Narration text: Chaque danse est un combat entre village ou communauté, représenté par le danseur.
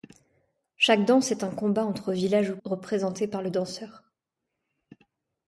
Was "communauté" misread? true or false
true